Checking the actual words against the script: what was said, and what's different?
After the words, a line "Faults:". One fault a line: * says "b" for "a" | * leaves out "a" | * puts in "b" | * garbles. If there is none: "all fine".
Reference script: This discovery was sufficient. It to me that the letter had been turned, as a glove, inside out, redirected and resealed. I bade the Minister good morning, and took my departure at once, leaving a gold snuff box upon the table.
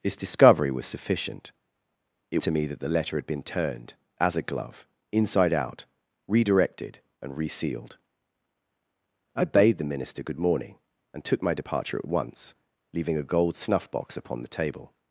This discovery was sufficient. It to me that the letter had been turned, as a glove, inside out, redirected and resealed. I bade the Minister good morning, and took my departure at once, leaving a gold snuff box upon the table.
Faults:
all fine